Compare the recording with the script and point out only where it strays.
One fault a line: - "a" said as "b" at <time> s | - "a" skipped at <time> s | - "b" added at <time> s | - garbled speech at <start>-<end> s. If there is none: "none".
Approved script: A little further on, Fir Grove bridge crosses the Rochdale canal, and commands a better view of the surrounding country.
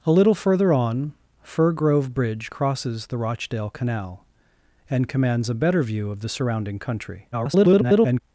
- garbled speech at 7.3-8.2 s